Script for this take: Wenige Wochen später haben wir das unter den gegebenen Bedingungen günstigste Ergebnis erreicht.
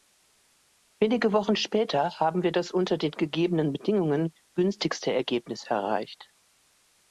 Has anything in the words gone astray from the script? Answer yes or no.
no